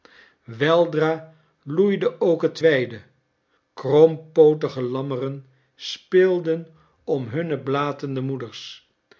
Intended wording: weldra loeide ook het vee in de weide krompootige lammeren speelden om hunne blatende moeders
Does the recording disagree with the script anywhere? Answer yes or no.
yes